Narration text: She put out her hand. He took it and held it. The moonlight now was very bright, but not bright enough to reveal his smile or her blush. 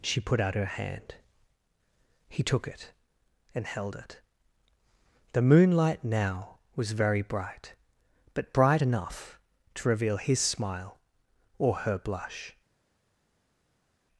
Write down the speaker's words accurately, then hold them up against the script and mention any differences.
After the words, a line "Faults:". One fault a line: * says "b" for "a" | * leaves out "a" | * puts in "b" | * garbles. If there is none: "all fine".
She put out her hand. He took it and held it. The moonlight now was very bright, but bright enough to reveal his smile or her blush.
Faults:
* leaves out "not"